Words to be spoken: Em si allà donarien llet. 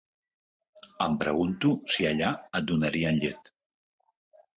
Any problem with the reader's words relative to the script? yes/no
yes